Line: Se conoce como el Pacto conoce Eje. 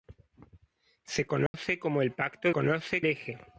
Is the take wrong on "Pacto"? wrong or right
right